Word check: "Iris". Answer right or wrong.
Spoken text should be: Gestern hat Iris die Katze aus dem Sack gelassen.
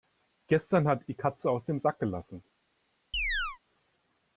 wrong